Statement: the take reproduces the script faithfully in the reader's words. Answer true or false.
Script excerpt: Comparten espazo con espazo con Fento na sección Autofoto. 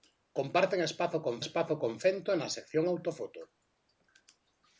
true